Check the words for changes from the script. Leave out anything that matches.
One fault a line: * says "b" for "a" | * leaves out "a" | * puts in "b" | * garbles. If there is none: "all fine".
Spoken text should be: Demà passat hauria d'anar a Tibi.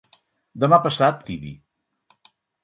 * leaves out "hauria d'anar a"